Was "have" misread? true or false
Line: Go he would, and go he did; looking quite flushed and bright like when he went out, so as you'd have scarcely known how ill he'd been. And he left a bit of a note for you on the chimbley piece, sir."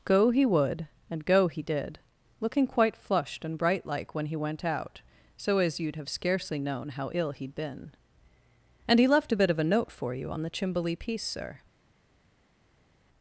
false